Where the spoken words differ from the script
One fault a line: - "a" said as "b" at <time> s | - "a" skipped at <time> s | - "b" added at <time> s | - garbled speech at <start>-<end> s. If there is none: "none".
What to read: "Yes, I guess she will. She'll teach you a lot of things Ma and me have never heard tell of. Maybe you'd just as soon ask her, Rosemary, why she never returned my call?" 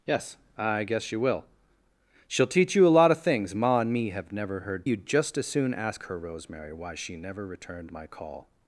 - "tell of Maybe" skipped at 4.9 s